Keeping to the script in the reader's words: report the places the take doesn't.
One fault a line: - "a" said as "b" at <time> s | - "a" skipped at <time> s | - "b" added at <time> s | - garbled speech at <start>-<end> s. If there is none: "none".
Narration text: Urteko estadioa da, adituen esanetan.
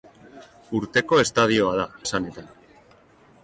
- "adituen" skipped at 1.9 s